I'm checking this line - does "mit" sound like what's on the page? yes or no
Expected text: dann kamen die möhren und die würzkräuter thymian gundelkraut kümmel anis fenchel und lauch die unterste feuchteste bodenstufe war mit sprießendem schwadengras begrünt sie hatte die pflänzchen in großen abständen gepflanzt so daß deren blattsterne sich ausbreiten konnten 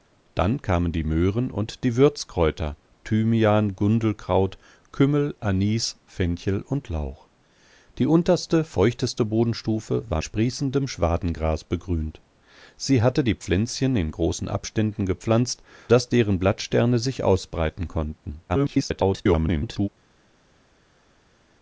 no